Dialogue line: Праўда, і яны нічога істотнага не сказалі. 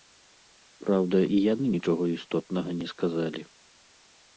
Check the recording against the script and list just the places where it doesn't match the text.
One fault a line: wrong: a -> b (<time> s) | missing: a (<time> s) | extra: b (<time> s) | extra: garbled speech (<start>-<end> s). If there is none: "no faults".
no faults